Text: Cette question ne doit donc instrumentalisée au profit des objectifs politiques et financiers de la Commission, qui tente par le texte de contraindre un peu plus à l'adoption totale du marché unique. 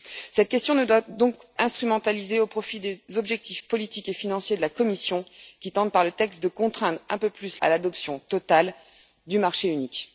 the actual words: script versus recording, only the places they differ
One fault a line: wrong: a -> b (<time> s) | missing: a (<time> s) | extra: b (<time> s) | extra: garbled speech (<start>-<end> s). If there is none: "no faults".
no faults